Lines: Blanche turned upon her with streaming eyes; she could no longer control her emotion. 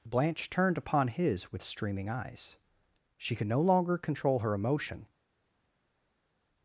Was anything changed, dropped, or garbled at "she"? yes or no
no